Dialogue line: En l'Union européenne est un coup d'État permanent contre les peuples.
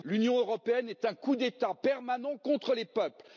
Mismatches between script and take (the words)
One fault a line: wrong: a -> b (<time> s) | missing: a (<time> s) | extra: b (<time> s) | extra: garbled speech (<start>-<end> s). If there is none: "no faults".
no faults